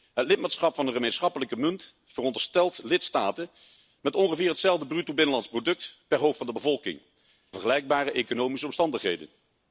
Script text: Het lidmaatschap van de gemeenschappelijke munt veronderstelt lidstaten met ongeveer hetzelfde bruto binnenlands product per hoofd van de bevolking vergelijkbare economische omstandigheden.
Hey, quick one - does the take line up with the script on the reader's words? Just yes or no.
yes